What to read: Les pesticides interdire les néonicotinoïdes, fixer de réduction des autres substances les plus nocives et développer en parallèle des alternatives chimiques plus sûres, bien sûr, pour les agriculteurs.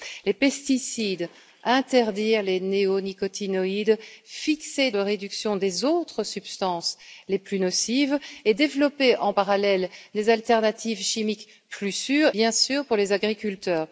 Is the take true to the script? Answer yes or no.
yes